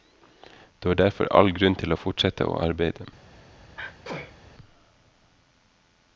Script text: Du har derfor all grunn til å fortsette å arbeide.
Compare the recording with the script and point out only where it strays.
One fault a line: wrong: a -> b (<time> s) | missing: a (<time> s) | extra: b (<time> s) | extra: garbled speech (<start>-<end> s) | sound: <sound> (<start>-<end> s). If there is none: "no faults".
sound: sneeze (3.8-4.4 s)